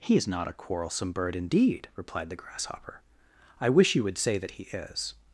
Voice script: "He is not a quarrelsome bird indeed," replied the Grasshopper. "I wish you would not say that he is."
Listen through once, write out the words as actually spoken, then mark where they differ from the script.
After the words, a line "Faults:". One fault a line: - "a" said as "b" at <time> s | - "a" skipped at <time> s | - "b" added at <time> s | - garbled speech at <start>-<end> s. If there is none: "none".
"He is not a quarrelsome bird indeed," replied the Grasshopper. "I wish you would say that he is."
Faults:
- "not" skipped at 4.2 s